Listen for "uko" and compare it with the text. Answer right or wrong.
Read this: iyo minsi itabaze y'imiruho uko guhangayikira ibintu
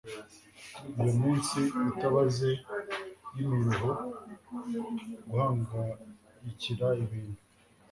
wrong